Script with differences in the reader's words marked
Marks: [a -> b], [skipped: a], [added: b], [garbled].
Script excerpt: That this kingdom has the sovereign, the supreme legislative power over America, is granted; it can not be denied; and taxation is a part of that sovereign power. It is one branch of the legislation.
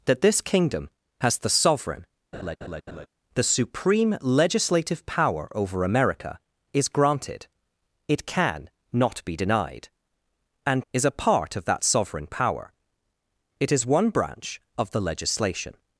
That this kingdom has the sovereign, the supreme legislative power over America, is granted; it can not be denied; and [skipped: taxation] is a part of that sovereign power. It is one branch of the legislation.